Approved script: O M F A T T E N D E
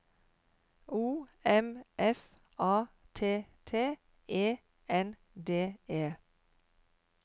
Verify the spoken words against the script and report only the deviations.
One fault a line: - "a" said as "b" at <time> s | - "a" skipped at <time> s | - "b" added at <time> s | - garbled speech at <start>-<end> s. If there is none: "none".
none